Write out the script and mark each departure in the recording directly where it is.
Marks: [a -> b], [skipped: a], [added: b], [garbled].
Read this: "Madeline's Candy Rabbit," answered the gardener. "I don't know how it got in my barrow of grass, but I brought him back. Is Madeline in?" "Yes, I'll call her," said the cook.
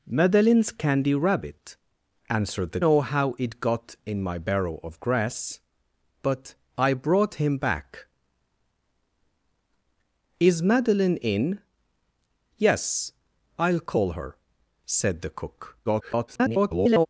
"Madeline's Candy Rabbit," answered the [skipped: gardener. "I don't] know how it got in my barrow of grass, but I brought him back. Is Madeline in?" "Yes, I'll call her," said the cook. [garbled]